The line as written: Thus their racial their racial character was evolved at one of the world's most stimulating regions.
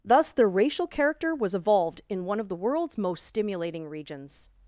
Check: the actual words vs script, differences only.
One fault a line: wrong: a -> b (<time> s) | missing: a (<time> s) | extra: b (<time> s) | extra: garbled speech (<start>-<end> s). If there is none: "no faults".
missing: their racial (0.9 s)
wrong: at -> in (2.1 s)